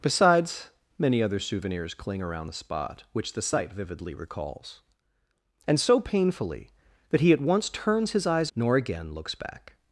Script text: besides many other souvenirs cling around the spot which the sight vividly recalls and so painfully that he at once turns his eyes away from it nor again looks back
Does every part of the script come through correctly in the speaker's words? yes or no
no